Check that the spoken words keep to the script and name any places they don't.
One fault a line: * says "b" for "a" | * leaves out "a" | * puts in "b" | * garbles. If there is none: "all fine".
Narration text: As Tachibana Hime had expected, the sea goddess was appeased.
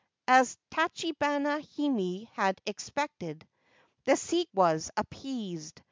* leaves out "goddess"